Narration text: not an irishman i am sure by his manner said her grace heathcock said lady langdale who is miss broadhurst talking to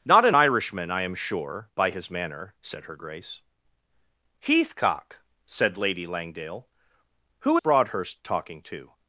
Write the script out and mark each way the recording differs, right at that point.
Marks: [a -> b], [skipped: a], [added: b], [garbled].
not an irishman i am sure by his manner said her grace heathcock said lady langdale who [skipped: is miss] broadhurst talking to